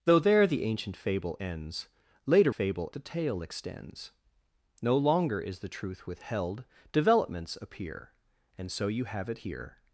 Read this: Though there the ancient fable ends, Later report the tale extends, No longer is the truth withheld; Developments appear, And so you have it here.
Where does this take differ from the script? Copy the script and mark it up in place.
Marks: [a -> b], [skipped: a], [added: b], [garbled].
Though there the ancient fable ends, Later [report -> fable] the tale extends, No longer is the truth withheld; Developments appear, And so you have it here.